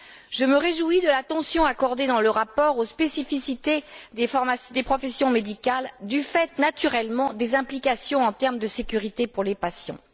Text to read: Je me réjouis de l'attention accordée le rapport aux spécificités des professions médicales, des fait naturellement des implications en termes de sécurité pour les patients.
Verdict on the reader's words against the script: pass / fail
fail